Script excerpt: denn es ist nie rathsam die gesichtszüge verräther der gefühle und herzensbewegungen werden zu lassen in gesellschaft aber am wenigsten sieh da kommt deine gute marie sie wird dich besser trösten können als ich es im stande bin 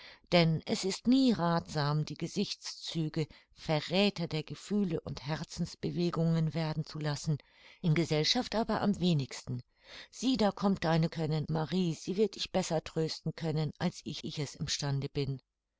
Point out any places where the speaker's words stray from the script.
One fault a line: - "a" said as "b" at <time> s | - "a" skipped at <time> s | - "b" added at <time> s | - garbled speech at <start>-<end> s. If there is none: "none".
- "gute" said as "können" at 11.1 s
- "ich" added at 14.2 s